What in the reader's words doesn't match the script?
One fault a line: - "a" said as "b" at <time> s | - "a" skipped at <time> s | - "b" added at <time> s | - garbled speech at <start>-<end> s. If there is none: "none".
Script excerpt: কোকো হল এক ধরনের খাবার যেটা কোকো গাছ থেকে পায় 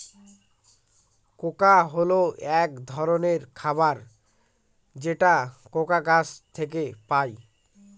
none